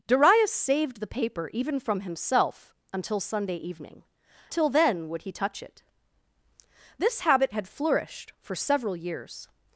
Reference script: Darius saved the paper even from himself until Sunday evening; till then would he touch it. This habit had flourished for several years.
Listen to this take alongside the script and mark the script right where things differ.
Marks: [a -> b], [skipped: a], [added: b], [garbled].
Darius saved the paper even from himself until Sunday evening; till then would he touch it. This habit had flourished for several years.